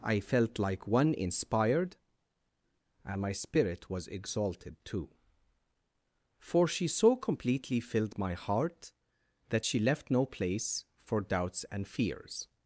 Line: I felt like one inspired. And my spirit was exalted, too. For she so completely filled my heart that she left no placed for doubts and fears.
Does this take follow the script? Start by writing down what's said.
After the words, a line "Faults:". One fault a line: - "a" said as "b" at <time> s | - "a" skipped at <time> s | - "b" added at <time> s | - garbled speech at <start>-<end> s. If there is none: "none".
I felt like one inspired. And my spirit was exalted, too. For she so completely filled my heart that she left no place for doubts and fears.
Faults:
- "placed" said as "place" at 10.3 s